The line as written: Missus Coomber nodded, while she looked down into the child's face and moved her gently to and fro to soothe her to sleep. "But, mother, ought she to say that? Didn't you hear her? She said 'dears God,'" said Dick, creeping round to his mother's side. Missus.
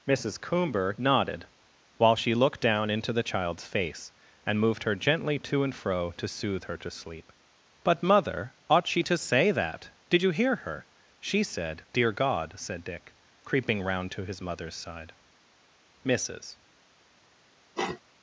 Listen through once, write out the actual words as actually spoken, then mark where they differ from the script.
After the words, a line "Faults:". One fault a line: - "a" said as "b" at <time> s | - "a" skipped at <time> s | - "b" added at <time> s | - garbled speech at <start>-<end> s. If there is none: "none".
Missus Coomber nodded, while she looked down into the child's face and moved her gently to and fro to soothe her to sleep. "But, mother, ought she to say that? Did you hear her? She said 'dear God,'" said Dick, creeping round to his mother's side. Missus.
Faults:
- "Didn't" said as "Did" at 10.1 s
- "dears" said as "dear" at 11.9 s